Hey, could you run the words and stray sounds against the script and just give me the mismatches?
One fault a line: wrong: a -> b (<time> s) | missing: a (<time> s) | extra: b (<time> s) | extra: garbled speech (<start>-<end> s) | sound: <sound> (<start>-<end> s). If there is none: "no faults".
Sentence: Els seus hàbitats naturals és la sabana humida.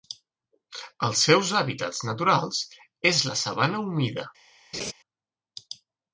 sound: laugh (4.7-4.9 s)